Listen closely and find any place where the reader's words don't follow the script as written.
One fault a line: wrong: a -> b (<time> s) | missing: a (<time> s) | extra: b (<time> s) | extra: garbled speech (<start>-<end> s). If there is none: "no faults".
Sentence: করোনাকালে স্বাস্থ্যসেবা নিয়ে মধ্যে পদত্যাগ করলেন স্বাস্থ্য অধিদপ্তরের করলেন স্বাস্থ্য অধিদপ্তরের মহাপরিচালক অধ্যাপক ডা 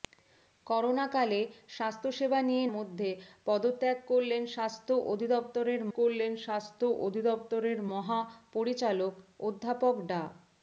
no faults